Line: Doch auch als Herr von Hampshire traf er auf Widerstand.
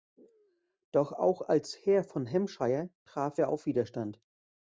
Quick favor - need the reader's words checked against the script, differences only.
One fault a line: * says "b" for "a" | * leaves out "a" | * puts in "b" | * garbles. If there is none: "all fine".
all fine